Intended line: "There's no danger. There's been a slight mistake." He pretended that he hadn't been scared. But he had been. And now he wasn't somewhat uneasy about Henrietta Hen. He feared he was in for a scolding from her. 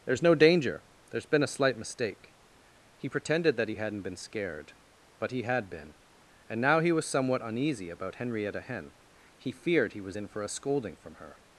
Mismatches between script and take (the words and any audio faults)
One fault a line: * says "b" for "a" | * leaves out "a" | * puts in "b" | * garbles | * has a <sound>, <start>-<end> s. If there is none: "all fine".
* says "was" for "wasn't"